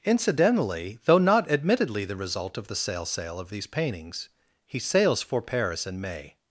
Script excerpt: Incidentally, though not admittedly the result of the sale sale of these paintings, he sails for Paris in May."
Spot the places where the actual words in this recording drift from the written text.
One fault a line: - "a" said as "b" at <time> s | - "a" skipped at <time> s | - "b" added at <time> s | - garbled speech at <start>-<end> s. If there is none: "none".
none